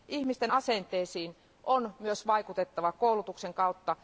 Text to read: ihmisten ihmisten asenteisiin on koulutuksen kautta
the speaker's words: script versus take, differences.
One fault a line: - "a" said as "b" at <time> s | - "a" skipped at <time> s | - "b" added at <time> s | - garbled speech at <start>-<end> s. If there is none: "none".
- "ihmisten" skipped at 0.5 s
- "myös vaikutettava" added at 2.0 s